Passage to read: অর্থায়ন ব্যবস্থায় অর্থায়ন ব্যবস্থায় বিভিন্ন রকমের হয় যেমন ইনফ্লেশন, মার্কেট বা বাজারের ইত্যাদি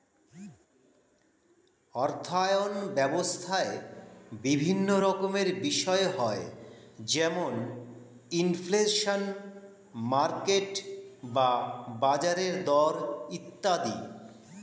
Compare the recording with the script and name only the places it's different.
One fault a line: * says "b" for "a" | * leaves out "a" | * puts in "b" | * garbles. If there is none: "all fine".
* leaves out "অর্থায়ন ব্যবস্থায়"
* puts in "বিষয়"
* puts in "দর"